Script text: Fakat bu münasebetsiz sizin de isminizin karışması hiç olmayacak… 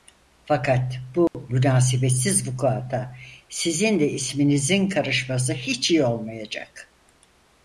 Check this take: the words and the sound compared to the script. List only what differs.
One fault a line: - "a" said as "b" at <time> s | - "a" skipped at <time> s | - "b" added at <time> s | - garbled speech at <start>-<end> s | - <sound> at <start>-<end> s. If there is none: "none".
- dropout at 1.3-1.3 s
- "vukuata" added at 2.5 s
- "iyi" added at 5.9 s